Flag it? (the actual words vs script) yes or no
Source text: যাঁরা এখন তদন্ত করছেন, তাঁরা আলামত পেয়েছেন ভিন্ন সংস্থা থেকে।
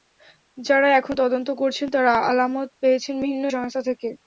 no